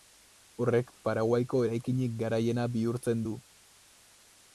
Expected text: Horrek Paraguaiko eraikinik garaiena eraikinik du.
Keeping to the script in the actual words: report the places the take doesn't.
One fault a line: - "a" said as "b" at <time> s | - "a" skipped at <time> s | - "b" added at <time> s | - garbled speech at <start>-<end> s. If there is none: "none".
- "eraikinik" said as "bihurtzen" at 2.8 s